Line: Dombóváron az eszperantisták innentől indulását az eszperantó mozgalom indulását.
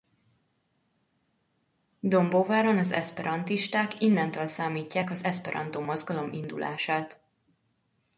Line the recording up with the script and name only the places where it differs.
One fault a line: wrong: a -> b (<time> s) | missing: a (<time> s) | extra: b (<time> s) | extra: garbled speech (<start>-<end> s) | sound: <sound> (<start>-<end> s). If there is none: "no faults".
wrong: indulását -> számítják (4.5 s)